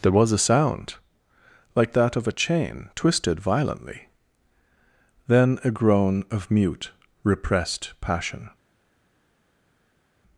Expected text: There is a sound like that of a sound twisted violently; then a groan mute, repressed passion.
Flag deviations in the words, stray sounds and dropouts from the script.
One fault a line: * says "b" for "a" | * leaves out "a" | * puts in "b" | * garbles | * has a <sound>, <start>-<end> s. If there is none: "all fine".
* says "was" for "is"
* says "chain" for "sound"
* puts in "of"